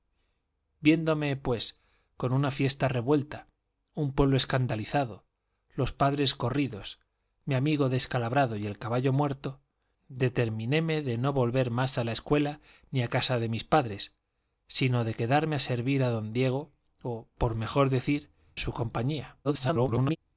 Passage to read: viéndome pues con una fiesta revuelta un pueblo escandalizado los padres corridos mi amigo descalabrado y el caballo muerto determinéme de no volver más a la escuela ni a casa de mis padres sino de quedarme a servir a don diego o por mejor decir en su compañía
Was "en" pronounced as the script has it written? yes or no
no